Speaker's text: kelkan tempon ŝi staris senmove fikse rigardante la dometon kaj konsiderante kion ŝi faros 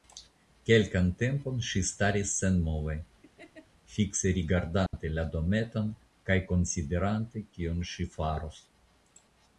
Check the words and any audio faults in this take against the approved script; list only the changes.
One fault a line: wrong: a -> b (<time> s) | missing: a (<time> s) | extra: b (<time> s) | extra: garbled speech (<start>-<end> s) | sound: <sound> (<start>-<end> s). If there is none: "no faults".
sound: laugh (3.2-3.7 s)
sound: dropout (4.9-4.9 s)